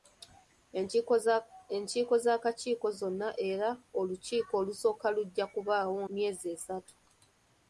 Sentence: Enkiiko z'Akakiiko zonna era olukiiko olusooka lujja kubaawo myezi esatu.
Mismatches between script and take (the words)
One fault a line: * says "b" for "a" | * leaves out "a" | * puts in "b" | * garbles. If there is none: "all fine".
all fine